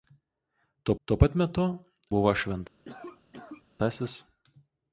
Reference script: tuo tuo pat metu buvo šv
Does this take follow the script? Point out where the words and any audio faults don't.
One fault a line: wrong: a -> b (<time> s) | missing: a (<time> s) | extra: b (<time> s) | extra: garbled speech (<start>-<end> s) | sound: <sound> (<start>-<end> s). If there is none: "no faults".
sound: cough (2.9-3.6 s)